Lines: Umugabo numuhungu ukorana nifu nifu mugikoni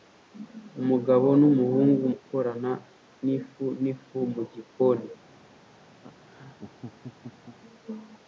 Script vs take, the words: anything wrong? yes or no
no